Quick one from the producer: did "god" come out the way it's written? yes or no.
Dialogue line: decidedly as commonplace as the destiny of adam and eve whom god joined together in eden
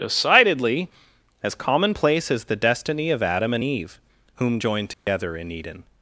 no